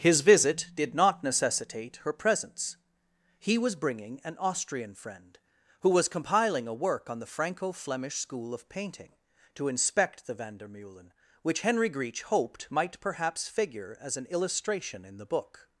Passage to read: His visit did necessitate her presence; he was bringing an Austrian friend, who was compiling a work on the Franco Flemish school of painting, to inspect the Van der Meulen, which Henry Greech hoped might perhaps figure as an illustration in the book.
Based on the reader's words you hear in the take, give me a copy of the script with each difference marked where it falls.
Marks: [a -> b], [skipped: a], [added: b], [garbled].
His visit did [added: not] necessitate her presence; he was bringing an Austrian friend, who was compiling a work on the Franco Flemish school of painting, to inspect the Van der Meulen, which Henry Greech hoped might perhaps figure as an illustration in the book.